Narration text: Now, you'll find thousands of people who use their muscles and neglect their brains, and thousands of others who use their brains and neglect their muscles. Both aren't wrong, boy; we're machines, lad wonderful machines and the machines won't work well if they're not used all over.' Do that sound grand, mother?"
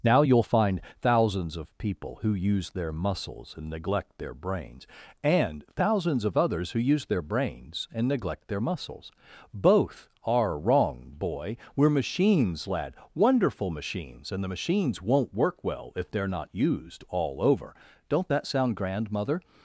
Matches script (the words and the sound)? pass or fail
fail